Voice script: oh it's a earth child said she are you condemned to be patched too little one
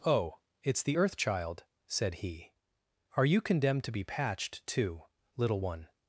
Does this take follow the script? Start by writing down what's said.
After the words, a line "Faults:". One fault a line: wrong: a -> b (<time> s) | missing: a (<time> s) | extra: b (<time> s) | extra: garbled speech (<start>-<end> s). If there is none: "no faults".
oh it's the earth child said he are you condemned to be patched too little one
Faults:
wrong: a -> the (0.8 s)
wrong: she -> he (2.2 s)